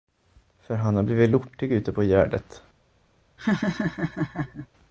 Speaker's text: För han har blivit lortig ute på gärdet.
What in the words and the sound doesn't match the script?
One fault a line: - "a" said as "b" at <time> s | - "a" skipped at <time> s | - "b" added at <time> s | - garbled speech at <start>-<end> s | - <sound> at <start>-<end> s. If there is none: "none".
- laugh at 3.4-4.7 s